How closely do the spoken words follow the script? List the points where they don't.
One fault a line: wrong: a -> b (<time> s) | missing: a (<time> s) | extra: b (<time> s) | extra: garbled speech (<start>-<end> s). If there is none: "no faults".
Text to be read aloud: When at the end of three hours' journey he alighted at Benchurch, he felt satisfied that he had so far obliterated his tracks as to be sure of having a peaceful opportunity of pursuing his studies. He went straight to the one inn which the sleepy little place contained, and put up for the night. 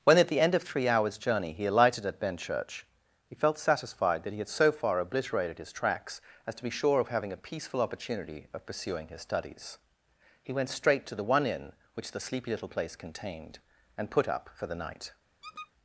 no faults